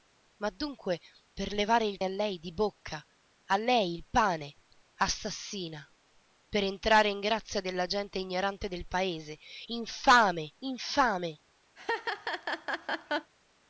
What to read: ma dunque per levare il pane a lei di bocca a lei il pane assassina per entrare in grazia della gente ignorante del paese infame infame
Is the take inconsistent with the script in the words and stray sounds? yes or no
yes